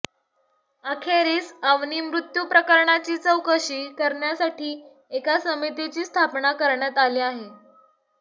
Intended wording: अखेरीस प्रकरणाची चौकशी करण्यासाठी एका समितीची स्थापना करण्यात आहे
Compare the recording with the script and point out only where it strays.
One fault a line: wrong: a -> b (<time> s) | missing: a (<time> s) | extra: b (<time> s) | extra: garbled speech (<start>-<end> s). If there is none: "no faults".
extra: अवनी मृत्यू (1.6 s)
extra: आली (7.0 s)